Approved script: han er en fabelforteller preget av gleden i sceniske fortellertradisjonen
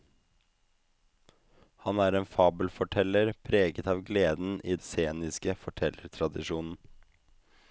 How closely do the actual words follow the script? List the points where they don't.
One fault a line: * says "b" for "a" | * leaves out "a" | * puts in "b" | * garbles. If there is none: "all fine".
all fine